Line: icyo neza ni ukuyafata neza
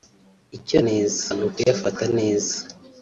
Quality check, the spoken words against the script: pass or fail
pass